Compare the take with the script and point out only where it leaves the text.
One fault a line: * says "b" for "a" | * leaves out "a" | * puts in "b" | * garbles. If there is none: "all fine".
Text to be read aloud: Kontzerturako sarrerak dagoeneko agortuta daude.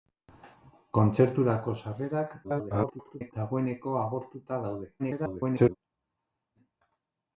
* garbles
* garbles